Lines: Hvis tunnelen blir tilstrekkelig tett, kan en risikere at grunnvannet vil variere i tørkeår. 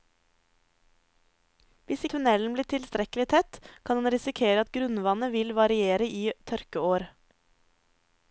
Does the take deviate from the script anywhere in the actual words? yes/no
no